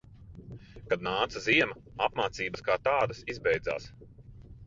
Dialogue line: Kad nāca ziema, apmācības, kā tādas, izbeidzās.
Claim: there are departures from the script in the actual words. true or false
false